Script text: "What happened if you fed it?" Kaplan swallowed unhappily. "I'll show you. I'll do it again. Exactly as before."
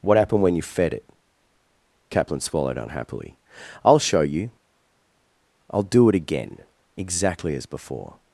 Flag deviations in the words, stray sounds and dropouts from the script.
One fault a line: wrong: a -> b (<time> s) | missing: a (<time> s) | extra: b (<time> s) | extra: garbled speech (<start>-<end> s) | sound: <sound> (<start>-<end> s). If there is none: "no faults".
wrong: if -> when (0.4 s)